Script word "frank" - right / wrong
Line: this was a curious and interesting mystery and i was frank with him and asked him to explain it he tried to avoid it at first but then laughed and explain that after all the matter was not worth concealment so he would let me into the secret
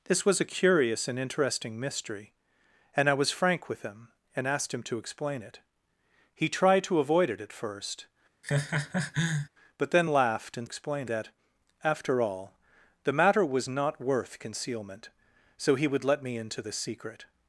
right